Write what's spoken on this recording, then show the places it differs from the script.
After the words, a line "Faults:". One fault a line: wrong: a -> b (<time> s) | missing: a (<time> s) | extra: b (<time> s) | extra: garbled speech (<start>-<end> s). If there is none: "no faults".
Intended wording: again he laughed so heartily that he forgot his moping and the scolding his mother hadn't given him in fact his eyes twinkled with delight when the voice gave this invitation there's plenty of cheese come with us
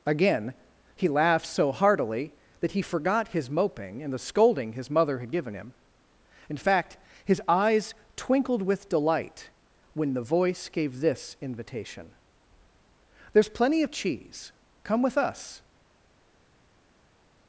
again he laughed so heartily that he forgot his moping and the scolding his mother had given him in fact his eyes twinkled with delight when the voice gave this invitation there's plenty of cheese come with us
Faults:
wrong: hadn't -> had (5.2 s)